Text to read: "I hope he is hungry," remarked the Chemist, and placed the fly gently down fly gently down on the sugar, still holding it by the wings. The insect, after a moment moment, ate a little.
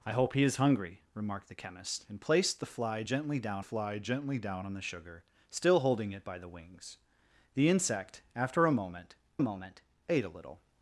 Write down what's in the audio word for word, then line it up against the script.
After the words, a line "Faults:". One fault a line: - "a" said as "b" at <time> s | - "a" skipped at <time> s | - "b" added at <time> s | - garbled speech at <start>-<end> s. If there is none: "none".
"I hope he is hungry," remarked the Chemist, and placed the fly gently down fly gently down on the sugar, still holding it by the wings. The insect, after a moment moment, ate a little.
Faults:
none